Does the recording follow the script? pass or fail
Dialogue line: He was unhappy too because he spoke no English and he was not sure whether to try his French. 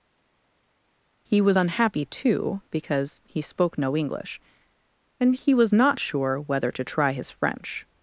pass